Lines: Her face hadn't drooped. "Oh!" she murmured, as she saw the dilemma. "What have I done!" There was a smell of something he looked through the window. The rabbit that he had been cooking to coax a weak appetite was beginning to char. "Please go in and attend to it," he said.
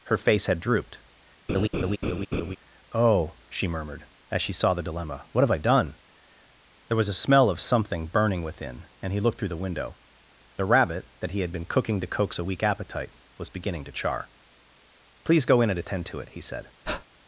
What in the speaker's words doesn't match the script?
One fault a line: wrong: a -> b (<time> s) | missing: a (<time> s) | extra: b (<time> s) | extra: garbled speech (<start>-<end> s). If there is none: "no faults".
wrong: hadn't -> had (0.5 s)
extra: burning within and (8.1 s)